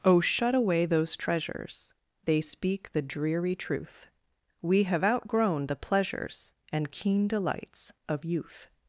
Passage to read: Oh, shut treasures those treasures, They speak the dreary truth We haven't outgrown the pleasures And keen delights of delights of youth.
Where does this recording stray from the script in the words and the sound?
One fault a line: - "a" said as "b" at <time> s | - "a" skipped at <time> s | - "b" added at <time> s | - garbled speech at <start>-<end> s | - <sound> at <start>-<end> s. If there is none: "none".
- "treasures" said as "away" at 0.6 s
- "haven't" said as "have" at 4.8 s
- "delights of" skipped at 8.2 s